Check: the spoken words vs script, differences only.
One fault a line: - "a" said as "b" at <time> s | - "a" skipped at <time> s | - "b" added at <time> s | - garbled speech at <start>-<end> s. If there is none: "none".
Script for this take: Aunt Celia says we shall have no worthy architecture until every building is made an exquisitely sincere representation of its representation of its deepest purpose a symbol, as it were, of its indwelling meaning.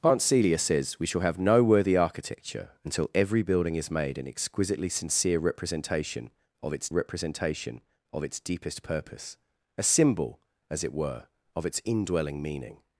none